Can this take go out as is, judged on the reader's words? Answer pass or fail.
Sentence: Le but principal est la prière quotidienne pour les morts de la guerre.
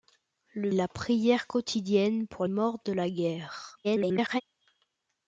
fail